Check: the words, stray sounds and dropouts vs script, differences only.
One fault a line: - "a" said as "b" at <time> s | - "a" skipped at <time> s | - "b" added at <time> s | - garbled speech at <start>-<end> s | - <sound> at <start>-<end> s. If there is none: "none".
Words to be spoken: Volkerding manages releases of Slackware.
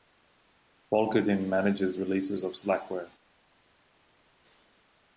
none